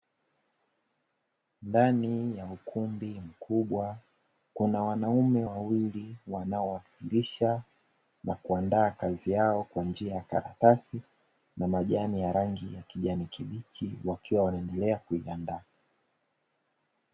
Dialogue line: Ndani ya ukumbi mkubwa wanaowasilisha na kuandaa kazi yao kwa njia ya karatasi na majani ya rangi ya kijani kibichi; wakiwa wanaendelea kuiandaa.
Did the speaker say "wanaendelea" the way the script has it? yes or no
yes